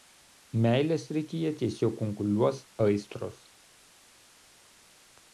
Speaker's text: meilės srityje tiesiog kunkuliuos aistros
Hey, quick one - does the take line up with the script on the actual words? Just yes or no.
yes